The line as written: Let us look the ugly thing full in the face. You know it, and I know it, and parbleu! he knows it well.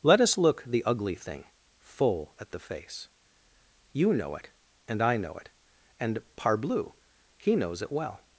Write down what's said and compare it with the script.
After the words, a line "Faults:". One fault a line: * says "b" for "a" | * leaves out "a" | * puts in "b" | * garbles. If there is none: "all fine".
Let us look the ugly thing full at the face. You know it, and I know it, and parbleu! he knows it well.
Faults:
* says "at" for "in"